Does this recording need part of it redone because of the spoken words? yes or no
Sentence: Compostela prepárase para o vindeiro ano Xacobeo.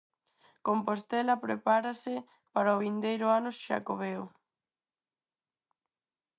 no